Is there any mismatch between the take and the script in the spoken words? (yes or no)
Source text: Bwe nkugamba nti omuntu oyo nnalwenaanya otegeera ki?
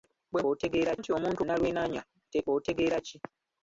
yes